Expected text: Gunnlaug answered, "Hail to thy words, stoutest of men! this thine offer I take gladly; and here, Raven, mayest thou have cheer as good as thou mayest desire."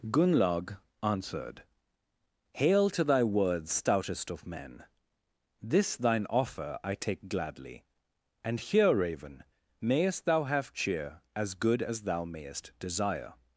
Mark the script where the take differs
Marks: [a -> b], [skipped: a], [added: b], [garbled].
Gunnlaug answered, "Hail to thy words, stoutest of men! this thine offer I take gladly; and here, Raven, mayest thou have cheer as good as thou mayest desire."